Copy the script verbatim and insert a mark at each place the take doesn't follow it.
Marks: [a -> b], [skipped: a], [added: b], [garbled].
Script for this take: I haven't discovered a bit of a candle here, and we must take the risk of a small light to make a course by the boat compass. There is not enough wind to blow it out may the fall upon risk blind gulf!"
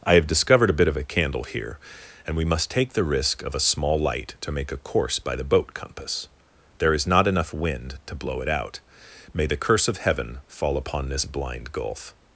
I [haven't -> have] discovered a bit of a candle here, and we must take the risk of a small light to make a course by the boat compass. There is not enough wind to blow it out may the [added: curse of Heaven] fall upon [risk -> this] blind gulf!"